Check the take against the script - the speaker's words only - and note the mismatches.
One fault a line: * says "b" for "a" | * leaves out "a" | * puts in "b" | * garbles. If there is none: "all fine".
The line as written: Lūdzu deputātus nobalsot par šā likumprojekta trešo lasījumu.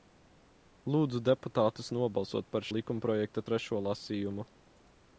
* leaves out "šā"